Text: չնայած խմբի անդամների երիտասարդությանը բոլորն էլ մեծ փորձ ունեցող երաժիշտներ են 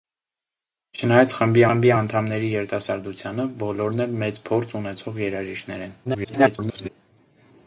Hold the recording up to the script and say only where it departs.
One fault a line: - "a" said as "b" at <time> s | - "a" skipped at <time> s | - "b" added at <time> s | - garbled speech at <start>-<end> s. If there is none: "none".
- "խմբի" added at 1.7 s
- garbled speech at 6.0-6.9 s